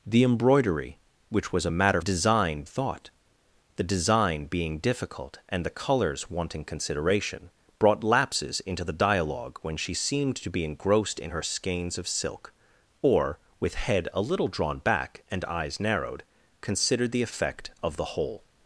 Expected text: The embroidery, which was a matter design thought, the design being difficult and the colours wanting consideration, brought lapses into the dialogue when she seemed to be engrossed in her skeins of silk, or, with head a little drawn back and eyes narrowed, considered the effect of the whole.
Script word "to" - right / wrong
right